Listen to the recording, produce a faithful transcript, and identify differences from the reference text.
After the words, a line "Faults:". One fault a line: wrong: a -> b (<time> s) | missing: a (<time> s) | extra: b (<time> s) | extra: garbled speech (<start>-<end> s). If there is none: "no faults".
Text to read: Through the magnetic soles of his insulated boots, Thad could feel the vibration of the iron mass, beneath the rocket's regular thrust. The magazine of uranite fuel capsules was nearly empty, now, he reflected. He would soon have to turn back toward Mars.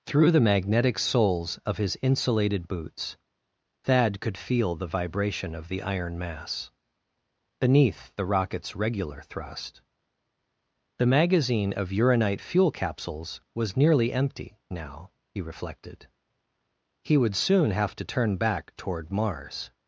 Through the magnetic soles of his insulated boots, Thad could feel the vibration of the iron mass, beneath the rocket's regular thrust. The magazine of uranite fuel capsules was nearly empty, now, he reflected. He would soon have to turn back toward Mars.
Faults:
no faults